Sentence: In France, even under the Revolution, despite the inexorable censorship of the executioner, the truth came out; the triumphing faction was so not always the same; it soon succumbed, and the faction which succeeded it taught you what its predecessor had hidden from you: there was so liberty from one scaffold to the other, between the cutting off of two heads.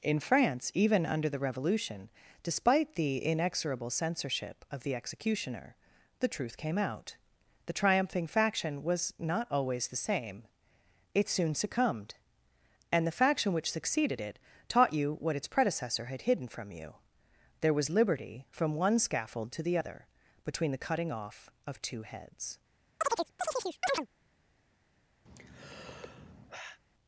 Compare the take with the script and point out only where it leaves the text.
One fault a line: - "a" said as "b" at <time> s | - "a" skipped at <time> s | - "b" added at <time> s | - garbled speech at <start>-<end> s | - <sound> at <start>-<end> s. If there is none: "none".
- "so" skipped at 9.1 s
- "so" skipped at 17.9 s
- chirp at 23.0-24.1 s
- sigh at 25.3-26.8 s